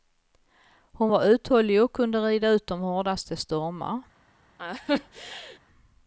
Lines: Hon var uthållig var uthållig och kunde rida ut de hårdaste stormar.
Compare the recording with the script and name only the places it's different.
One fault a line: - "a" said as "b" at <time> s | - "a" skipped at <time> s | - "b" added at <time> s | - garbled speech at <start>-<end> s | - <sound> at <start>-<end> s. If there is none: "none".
- "var uthållig" skipped at 1.8 s
- laugh at 4.6-5.6 s